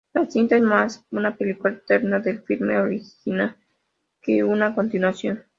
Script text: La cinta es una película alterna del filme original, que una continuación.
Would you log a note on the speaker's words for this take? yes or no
yes